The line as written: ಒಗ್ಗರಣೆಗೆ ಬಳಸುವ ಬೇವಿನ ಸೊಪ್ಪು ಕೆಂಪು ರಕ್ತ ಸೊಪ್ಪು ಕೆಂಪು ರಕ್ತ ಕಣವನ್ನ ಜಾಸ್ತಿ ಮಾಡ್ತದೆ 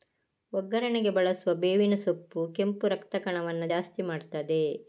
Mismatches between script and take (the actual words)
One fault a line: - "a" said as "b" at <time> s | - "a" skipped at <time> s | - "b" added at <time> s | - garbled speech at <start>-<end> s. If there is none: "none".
- "ಸೊಪ್ಪು ಕೆಂಪು ರಕ್ತ" skipped at 3.1 s